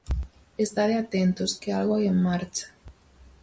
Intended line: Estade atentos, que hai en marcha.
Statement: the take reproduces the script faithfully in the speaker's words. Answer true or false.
false